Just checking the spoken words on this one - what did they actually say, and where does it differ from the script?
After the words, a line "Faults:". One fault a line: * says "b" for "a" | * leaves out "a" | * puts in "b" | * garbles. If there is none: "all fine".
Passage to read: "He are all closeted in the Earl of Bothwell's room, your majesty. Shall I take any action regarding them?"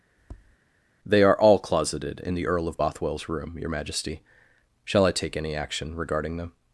"They are all closeted in the Earl of Bothwell's room, your majesty. Shall I take any action regarding them?"
Faults:
* says "They" for "He"